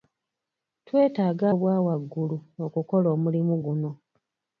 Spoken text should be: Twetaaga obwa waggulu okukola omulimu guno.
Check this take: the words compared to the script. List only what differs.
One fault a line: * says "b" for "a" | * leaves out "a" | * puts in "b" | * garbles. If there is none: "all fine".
all fine